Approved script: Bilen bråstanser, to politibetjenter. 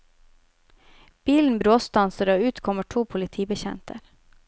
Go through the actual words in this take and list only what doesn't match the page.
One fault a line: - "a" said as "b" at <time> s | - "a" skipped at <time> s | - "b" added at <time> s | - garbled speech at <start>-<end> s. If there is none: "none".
- "og ut kommer" added at 2.3 s